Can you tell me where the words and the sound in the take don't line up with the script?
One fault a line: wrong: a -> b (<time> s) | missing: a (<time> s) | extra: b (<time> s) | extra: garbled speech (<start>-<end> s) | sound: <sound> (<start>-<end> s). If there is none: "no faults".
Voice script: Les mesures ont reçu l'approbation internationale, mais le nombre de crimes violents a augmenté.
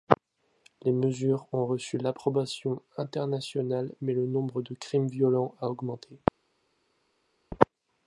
no faults